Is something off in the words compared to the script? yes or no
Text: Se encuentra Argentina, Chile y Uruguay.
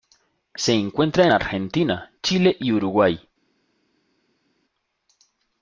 no